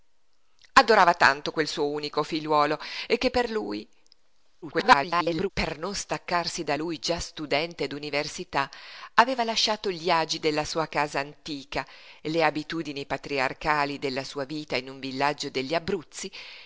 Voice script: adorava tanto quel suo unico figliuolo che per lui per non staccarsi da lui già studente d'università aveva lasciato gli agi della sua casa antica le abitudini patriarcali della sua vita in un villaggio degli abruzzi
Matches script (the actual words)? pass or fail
fail